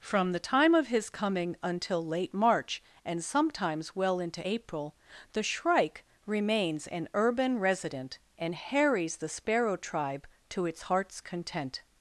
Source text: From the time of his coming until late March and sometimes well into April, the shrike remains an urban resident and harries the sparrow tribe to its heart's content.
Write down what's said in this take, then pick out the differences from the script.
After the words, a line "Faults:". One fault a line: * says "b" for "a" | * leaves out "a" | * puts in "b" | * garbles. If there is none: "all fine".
From the time of his coming until late March and sometimes well into April, the shrike remains an urban resident and harries the sparrow tribe to its heart's content.
Faults:
all fine